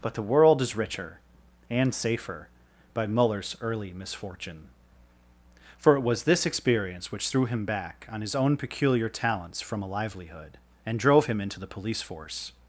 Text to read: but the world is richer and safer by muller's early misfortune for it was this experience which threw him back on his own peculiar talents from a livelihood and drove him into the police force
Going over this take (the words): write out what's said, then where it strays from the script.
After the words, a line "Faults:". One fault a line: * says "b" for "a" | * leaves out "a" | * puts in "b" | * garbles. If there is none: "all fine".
but the world is richer and safer by muller's early misfortune for it was this experience which threw him back on his own peculiar talents from a livelihood and drove him into the police force
Faults:
all fine